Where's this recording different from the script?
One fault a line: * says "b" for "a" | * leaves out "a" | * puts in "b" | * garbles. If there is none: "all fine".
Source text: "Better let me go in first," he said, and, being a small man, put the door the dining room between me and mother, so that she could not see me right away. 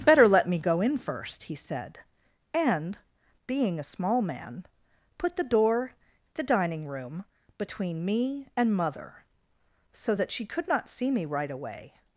all fine